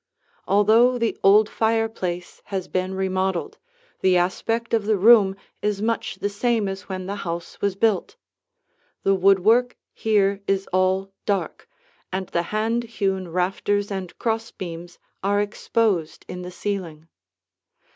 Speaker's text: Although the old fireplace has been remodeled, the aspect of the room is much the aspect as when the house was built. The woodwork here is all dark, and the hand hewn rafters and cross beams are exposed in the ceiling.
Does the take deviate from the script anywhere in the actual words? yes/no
yes